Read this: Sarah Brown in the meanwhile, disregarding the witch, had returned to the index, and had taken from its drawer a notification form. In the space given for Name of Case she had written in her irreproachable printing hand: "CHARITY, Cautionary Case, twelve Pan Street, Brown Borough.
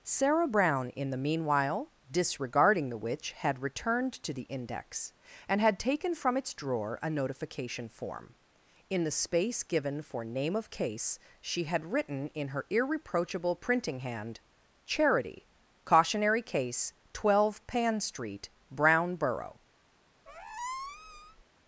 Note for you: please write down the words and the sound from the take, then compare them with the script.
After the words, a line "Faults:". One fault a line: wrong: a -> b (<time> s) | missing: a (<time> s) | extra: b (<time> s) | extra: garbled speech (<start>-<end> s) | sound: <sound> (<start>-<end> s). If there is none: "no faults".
Sarah Brown in the meanwhile, disregarding the witch, had returned to the index, and had taken from its drawer a notification form. In the space given for Name of Case she had written in her irreproachable printing hand: "CHARITY, Cautionary Case, twelve Pan Street, Brown Borough.
Faults:
sound: squeak (20.3-21.4 s)